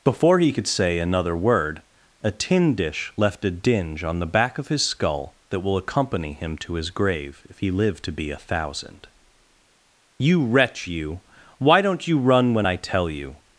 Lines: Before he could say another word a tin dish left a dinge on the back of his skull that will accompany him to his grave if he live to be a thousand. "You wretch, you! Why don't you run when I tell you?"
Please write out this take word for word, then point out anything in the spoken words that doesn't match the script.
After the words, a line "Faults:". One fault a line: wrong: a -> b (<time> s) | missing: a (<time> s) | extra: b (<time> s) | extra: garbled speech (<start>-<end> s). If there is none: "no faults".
Before he could say another word a tin dish left a dinge on the back of his skull that will accompany him to his grave if he live to be a thousand. "You wretch, you! Why don't you run when I tell you?"
Faults:
no faults